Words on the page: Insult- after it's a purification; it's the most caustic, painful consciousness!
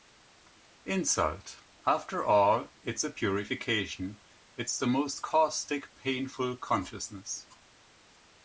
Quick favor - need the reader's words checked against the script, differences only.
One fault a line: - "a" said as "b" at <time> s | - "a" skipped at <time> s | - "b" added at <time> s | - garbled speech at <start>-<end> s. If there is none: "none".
- "all" added at 2.2 s